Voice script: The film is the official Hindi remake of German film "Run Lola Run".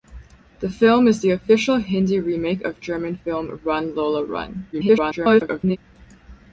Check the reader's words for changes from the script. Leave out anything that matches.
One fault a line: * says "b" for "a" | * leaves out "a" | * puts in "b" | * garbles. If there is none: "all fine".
* garbles